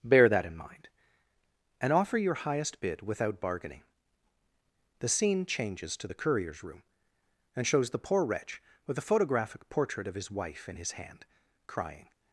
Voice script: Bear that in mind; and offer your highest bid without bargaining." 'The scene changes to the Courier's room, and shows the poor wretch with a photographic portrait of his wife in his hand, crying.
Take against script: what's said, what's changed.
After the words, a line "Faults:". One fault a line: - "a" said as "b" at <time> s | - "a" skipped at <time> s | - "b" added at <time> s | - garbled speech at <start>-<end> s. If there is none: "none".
Bear that in mind; and offer your highest bid without bargaining." 'The scene changes to the Courier's room, and shows the poor wretch with a photographic portrait of his wife in his hand, crying.
Faults:
none